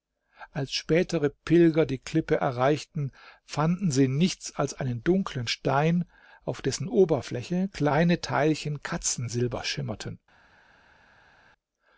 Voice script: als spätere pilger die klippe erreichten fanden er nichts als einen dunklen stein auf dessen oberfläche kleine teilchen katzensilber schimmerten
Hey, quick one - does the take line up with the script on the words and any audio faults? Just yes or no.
no